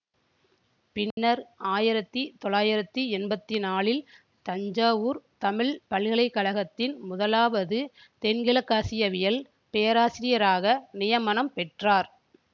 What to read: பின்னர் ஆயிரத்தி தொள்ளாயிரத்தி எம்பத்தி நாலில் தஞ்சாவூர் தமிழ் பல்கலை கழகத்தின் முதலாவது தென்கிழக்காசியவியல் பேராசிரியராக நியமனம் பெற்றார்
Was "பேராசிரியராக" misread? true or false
false